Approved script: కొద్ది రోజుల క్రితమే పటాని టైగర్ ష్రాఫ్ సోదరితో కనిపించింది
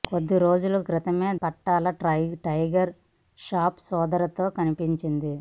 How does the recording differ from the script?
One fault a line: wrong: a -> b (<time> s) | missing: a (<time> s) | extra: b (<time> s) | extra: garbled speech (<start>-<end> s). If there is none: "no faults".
no faults